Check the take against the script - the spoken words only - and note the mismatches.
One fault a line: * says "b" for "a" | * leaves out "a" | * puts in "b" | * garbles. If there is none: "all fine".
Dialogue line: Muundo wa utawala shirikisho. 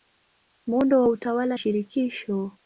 all fine